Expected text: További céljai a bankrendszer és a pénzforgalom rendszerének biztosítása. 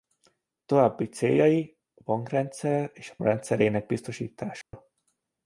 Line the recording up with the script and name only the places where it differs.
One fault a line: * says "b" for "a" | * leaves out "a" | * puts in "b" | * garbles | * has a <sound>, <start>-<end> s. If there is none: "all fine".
* leaves out "pénzforgalom"
* has a dropout, 4.6-4.7 s